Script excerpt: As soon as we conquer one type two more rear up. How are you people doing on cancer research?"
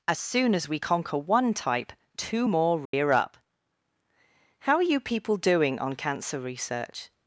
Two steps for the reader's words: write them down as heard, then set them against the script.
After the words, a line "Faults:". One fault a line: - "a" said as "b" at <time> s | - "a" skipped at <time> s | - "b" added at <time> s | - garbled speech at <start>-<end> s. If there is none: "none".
As soon as we conquer one type two more rear up. How are you people doing on cancer research?"
Faults:
none